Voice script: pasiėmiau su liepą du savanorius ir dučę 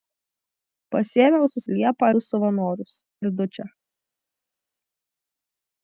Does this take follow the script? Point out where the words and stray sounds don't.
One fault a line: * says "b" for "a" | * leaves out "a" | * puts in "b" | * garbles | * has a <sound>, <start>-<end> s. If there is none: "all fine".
all fine